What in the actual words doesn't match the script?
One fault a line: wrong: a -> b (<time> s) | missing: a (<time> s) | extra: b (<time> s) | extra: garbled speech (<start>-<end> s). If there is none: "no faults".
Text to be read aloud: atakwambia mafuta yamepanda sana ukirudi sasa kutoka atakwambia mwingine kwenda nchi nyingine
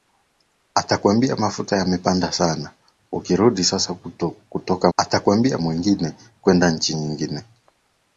no faults